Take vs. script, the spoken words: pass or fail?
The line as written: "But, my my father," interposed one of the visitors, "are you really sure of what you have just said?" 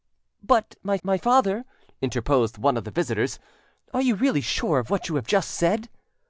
pass